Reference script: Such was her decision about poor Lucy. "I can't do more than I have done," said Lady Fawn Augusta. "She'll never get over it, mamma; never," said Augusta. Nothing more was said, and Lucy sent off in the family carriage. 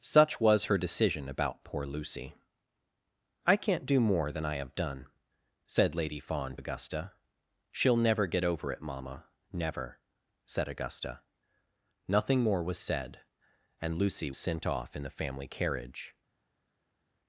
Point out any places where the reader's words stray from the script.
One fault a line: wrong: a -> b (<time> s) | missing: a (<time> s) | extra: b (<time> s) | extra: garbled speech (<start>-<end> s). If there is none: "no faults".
no faults